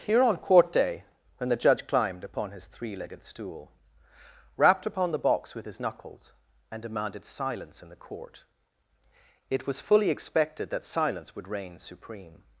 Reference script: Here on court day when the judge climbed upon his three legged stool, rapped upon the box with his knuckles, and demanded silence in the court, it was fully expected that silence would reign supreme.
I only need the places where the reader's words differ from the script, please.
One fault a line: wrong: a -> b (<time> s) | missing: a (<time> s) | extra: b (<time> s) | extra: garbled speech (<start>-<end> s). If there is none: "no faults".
no faults